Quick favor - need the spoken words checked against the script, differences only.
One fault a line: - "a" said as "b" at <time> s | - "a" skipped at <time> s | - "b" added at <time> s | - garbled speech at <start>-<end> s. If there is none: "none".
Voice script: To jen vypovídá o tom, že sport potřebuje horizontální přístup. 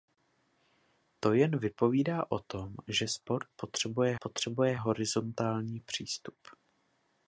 - "potřebuje" added at 4.2 s